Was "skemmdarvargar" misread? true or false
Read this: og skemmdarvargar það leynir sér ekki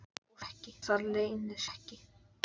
true